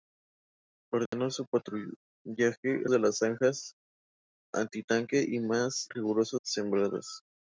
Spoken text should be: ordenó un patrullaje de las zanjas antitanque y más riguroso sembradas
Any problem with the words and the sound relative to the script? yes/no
yes